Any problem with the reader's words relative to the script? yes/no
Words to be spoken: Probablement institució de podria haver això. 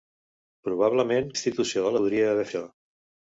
no